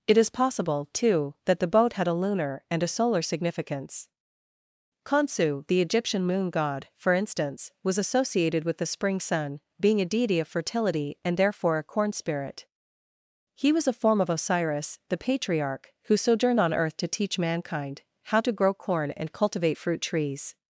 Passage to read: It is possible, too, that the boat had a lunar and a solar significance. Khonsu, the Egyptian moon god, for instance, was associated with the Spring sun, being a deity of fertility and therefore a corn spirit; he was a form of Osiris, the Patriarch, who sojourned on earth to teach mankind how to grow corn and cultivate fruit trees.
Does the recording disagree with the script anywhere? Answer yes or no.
no